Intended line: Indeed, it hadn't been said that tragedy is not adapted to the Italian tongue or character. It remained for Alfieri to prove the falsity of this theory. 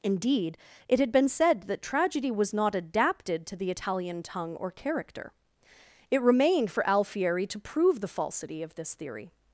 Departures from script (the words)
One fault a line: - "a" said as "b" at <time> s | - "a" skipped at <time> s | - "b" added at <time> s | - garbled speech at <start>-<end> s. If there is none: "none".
- "hadn't" said as "had" at 1.0 s
- "is" said as "was" at 2.3 s